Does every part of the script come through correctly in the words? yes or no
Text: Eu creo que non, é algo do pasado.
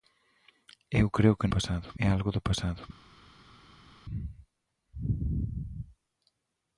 no